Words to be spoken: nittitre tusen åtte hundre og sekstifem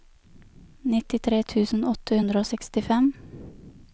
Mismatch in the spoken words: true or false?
false